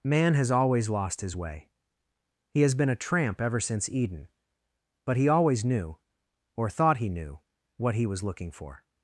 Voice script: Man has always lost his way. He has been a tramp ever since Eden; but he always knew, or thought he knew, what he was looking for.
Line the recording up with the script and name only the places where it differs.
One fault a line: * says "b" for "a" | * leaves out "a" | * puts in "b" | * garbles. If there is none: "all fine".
all fine